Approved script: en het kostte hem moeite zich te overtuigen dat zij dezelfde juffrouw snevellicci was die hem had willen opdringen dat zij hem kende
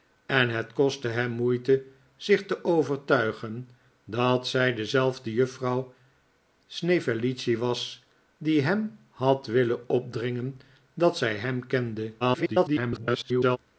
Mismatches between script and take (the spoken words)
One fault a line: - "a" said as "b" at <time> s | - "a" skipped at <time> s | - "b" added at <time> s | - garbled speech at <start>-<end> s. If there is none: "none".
- garbled speech at 12.2-13.6 s